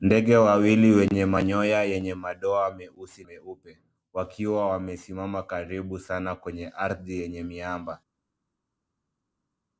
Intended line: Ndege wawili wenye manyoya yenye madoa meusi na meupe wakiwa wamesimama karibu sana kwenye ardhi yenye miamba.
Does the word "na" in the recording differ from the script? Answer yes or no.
yes